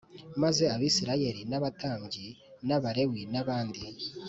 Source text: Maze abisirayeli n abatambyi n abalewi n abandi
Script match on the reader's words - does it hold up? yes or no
yes